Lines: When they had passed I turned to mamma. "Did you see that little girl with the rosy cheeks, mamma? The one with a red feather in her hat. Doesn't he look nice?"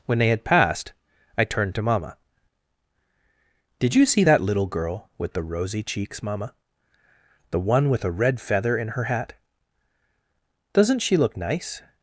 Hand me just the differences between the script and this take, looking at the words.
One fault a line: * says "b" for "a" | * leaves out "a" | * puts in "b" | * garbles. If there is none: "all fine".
* says "she" for "he"